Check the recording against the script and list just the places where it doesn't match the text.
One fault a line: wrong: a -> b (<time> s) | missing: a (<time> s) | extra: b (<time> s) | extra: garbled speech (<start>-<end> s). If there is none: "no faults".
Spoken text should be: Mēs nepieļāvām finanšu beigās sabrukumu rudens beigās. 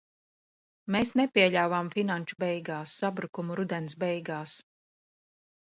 no faults